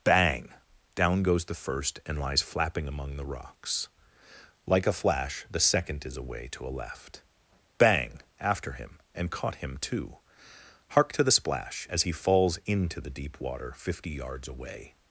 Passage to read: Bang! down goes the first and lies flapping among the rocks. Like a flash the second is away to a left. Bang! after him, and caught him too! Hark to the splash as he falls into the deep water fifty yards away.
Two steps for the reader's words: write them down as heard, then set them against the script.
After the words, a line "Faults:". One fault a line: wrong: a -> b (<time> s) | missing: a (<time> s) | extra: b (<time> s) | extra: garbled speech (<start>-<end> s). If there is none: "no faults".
Bang! down goes the first and lies flapping among the rocks. Like a flash the second is away to a left. Bang! after him, and caught him too! Hark to the splash as he falls into the deep water fifty yards away.
Faults:
no faults